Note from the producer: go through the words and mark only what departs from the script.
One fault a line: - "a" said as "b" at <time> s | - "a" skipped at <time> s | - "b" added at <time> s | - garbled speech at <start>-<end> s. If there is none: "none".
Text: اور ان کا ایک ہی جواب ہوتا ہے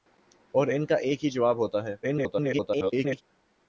- garbled speech at 2.0-3.2 s